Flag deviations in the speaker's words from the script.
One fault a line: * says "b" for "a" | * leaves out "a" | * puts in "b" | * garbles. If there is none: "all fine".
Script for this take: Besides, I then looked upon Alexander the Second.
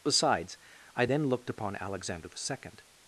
all fine